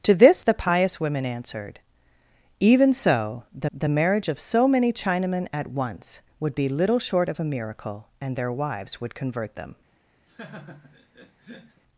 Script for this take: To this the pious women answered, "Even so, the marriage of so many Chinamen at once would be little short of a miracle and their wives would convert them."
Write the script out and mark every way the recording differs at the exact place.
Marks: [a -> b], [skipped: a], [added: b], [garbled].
To this the pious women answered, "Even so, the [added: the] marriage of so many Chinamen at once would be little short of a miracle and their wives would convert them."